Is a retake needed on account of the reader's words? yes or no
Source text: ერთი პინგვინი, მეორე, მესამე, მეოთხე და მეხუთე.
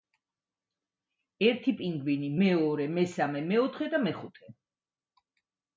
no